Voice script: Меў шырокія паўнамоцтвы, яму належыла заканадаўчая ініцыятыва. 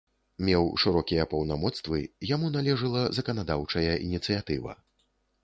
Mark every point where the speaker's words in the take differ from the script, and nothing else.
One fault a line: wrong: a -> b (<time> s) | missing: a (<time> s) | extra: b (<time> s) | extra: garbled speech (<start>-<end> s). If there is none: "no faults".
no faults